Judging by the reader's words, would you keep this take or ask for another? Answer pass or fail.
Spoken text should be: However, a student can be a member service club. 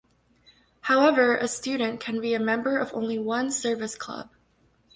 fail